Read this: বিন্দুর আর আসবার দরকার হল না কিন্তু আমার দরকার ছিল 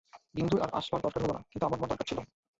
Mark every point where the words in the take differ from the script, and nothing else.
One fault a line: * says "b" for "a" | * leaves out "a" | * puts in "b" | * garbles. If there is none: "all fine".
* puts in "আমার"